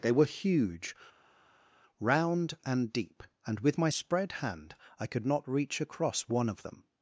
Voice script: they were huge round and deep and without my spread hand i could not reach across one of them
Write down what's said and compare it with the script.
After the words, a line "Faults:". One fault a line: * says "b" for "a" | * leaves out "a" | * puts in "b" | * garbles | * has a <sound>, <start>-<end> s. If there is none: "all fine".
they were huge round and deep and with my spread hand i could not reach across one of them
Faults:
* says "with" for "without"